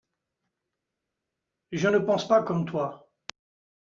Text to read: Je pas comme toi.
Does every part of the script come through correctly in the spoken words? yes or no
no